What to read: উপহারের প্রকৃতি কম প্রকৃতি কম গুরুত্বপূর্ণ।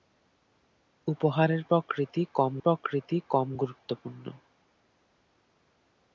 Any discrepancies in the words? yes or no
no